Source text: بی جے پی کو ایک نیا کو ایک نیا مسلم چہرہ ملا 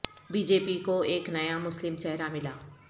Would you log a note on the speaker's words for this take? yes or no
yes